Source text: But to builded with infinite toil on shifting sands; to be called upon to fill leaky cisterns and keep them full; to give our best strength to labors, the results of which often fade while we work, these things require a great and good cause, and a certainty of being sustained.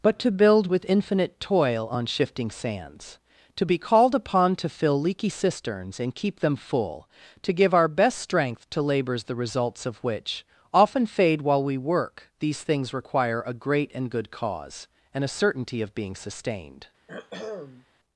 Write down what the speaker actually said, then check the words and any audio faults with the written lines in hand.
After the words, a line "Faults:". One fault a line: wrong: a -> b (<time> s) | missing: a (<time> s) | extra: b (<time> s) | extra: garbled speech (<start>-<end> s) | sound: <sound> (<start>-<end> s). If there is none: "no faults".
But to build with infinite toil on shifting sands; to be called upon to fill leaky cisterns and keep them full; to give our best strength to labors, the results of which often fade while we work, these things require a great and good cause, and a certainty of being sustained.
Faults:
wrong: builded -> build (0.3 s)
sound: throat clearing (17.1-17.9 s)